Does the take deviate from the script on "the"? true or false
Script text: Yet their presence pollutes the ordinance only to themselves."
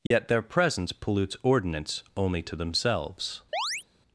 true